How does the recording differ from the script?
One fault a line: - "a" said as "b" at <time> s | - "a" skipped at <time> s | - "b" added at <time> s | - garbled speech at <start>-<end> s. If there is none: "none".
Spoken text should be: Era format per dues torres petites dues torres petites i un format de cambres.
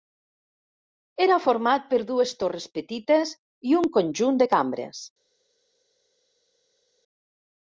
- "dues torres petites" skipped at 3.4 s
- "format" said as "conjunt" at 4.0 s